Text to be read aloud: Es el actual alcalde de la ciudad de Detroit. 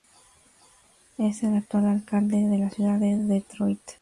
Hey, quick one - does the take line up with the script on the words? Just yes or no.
yes